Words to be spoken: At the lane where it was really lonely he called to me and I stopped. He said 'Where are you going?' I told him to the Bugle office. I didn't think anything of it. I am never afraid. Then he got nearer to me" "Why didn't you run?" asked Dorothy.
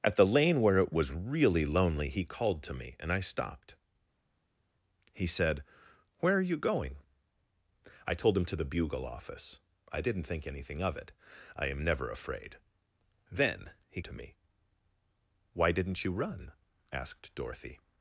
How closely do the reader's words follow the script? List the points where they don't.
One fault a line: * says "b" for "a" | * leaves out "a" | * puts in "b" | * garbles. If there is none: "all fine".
* leaves out "got nearer"